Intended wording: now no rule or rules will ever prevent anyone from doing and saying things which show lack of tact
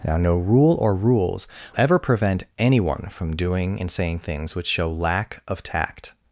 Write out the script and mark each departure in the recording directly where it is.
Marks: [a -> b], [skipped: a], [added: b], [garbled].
now no rule or rules [skipped: will] ever prevent anyone from doing and saying things which show lack of tact